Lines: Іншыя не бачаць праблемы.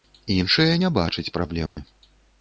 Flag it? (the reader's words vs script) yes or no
no